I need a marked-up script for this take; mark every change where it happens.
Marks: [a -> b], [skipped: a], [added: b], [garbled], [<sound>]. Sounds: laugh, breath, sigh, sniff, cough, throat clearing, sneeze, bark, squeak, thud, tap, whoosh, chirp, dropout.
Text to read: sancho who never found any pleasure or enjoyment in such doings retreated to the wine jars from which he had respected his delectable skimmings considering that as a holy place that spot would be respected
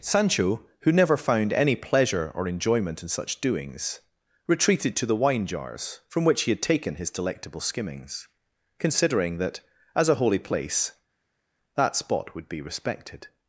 sancho who never found any pleasure or enjoyment in such doings retreated to the wine jars from which he had [respected -> taken] his delectable skimmings considering that as a holy place that spot would be respected